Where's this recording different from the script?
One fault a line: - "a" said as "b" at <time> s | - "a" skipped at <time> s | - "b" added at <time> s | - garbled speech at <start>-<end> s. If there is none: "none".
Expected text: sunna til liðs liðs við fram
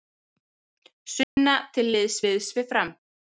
none